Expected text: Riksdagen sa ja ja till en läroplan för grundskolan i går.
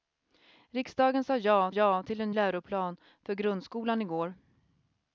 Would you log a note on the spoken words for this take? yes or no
no